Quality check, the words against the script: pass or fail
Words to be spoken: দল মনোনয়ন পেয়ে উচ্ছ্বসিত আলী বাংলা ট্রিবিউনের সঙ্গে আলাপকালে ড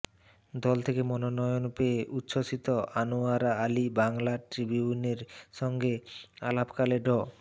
fail